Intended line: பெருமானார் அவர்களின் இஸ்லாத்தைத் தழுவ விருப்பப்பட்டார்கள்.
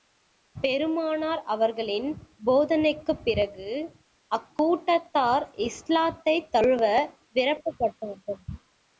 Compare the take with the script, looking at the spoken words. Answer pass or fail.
fail